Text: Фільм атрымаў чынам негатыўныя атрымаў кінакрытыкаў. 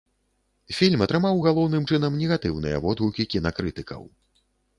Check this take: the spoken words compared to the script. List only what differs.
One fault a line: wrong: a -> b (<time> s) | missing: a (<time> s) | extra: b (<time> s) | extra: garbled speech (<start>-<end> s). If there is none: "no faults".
extra: галоўным (1.5 s)
wrong: атрымаў -> водгукі (2.9 s)